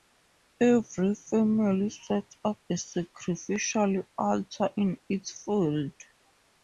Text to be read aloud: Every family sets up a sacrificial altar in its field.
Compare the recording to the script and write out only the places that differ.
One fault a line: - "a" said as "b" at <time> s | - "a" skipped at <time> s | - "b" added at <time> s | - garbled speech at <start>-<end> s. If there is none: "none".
none